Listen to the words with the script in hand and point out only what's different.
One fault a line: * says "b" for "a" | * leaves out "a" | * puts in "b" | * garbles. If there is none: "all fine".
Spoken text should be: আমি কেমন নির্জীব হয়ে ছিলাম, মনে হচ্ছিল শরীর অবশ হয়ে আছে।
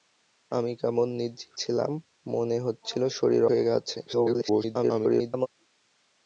* leaves out "হয়ে"
* leaves out "অবশ"
* garbles